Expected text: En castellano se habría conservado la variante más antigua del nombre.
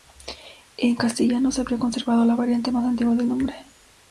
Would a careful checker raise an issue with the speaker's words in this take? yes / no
no